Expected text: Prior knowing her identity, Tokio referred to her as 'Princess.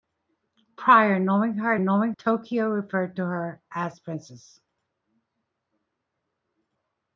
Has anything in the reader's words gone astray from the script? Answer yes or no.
yes